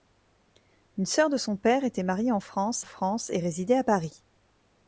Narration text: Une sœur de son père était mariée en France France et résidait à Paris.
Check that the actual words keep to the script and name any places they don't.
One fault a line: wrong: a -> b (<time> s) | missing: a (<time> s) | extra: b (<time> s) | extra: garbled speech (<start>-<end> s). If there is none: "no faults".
no faults